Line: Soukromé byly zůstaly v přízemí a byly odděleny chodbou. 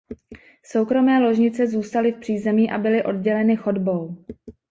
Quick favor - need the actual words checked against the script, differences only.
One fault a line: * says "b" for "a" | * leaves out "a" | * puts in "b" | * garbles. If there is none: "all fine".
* says "ložnice" for "byly"